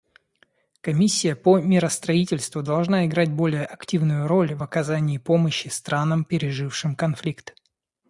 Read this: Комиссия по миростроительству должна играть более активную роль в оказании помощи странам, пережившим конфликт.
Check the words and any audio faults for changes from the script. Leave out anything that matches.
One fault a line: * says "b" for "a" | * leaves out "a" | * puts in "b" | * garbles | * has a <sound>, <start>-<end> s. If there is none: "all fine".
all fine